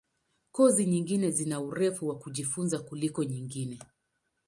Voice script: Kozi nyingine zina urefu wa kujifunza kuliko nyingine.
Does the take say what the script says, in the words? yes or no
yes